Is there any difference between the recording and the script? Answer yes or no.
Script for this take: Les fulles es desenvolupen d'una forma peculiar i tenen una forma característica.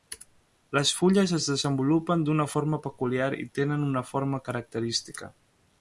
no